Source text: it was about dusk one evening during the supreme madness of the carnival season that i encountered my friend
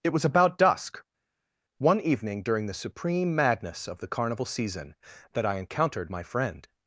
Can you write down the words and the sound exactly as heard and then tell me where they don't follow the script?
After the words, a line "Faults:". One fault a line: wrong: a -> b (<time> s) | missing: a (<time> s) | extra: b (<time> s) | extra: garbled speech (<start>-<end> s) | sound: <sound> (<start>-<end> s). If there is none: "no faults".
it was about dusk one evening during the supreme madness of the carnival season that i encountered my friend
Faults:
no faults